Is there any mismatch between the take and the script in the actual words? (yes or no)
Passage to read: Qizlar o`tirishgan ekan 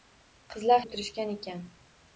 no